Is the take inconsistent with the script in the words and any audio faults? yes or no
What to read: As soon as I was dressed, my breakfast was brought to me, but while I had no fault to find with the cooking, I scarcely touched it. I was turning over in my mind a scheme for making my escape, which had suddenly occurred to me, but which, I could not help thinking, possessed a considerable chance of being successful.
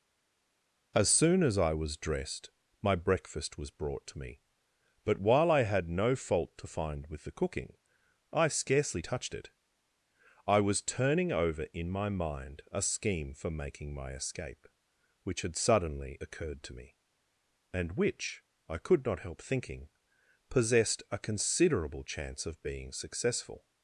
yes